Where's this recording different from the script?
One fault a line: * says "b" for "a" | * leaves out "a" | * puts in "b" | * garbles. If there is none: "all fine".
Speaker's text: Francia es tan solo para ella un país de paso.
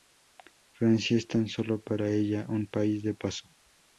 all fine